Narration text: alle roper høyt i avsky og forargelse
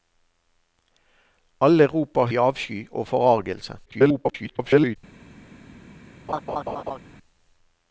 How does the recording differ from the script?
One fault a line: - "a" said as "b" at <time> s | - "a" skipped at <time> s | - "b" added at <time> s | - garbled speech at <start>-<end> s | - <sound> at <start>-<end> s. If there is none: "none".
- "høyt" skipped at 2.3 s
- garbled speech at 3.9-5.0 s
- laugh at 6.3-7.0 s